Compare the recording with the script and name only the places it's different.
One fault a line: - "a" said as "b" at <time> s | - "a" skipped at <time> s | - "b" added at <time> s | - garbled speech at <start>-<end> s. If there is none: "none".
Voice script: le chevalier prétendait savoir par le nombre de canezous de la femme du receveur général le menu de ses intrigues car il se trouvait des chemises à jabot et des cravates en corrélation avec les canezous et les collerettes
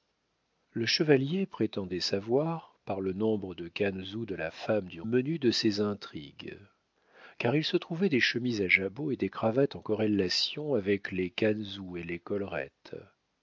- "receveur général le" skipped at 5.0 s